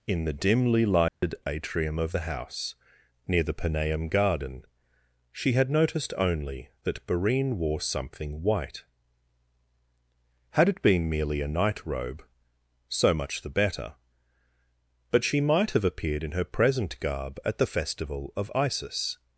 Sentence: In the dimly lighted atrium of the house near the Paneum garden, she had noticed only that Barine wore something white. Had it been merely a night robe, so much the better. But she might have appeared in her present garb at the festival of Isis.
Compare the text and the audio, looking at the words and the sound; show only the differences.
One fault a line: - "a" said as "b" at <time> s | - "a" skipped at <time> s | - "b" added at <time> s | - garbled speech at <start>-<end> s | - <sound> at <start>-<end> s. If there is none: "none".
- dropout at 1.1-1.2 s